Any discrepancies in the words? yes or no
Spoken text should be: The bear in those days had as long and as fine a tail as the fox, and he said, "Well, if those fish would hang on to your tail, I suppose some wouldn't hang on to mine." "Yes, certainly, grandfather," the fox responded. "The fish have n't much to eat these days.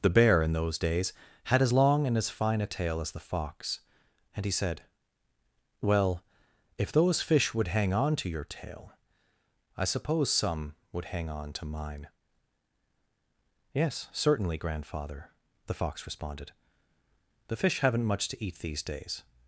yes